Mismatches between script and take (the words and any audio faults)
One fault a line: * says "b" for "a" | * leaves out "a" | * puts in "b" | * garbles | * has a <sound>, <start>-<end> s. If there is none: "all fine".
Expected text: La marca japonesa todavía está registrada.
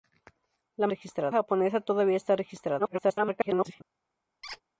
* says "registrada" for "marca"
* garbles
* has a squeak, 4.4-4.6 s